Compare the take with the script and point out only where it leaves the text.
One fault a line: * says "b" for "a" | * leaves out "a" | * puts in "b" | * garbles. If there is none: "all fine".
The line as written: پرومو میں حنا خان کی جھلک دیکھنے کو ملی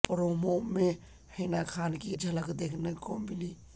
all fine